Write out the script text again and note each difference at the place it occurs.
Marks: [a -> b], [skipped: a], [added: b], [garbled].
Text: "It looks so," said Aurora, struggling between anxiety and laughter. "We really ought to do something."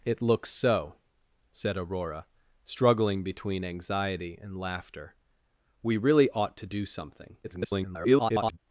"It looks so," said Aurora, struggling between anxiety and laughter. "We really ought to do something." [garbled]